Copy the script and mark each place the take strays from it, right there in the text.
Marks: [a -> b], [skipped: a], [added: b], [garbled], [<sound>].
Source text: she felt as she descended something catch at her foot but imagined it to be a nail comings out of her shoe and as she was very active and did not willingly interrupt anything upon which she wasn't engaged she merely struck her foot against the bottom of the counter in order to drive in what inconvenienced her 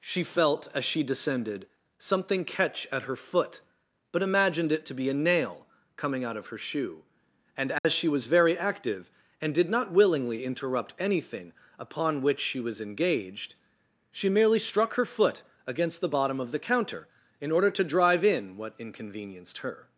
she felt as she descended something catch at her foot but imagined it to be a nail [comings -> coming] out of her shoe and as [dropout] she was very active and did not willingly interrupt anything upon which she [wasn't -> was] engaged she merely struck her foot against the bottom of the counter in order to drive in what inconvenienced her